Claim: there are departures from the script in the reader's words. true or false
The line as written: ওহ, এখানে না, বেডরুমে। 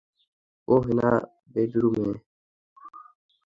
true